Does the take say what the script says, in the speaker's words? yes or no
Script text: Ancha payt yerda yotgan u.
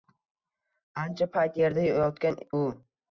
yes